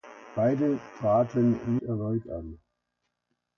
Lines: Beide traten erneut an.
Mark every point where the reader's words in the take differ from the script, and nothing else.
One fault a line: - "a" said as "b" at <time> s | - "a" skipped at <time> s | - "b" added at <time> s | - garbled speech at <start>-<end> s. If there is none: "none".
none